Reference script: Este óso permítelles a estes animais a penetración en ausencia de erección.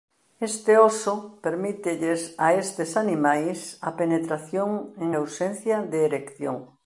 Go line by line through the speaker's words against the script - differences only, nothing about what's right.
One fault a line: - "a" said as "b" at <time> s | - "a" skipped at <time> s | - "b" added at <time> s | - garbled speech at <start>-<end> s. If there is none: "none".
none